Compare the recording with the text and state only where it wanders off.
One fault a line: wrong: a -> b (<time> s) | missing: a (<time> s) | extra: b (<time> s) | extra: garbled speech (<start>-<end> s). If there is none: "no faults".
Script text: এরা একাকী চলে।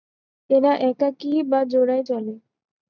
extra: বা জোড়ায় (1.4 s)